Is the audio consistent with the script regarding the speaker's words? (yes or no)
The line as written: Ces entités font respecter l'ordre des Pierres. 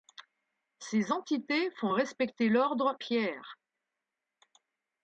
no